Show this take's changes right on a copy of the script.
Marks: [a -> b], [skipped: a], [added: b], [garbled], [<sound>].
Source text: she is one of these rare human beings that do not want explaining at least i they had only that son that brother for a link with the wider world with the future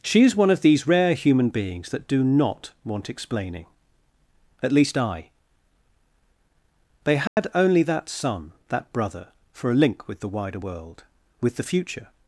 she is one of these rare human beings that do not want explaining at least i they had [dropout] only that son that brother for a link with the wider world with the future